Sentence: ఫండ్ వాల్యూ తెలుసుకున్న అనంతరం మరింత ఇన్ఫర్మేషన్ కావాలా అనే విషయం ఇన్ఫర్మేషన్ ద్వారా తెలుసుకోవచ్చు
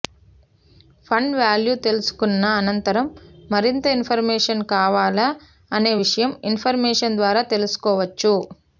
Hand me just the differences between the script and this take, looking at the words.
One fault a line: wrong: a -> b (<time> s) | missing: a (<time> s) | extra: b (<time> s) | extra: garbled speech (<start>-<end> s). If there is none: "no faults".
no faults